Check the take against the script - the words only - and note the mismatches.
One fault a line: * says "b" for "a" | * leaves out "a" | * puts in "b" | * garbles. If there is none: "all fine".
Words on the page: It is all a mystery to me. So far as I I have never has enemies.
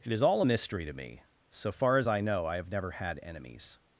* puts in "know"
* says "had" for "has"